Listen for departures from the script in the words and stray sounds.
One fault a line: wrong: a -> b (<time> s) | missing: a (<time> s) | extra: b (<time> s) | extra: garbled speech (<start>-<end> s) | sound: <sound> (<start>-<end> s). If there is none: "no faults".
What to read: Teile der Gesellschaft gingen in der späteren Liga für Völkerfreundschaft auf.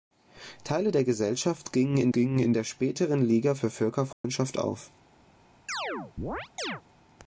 extra: gingen in (2.1 s)
sound: dropout (4.1-4.2 s)
sound: chirp (5.7-6.8 s)